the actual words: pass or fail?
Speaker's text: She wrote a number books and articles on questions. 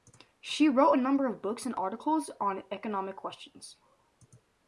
fail